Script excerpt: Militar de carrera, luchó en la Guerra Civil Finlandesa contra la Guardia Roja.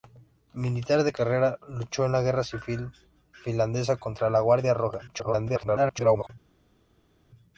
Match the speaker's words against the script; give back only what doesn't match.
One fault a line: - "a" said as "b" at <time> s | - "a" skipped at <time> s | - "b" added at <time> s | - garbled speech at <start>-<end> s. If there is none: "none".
- garbled speech at 5.1-6.3 s